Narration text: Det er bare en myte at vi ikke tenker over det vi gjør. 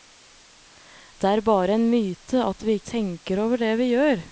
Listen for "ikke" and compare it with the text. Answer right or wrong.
wrong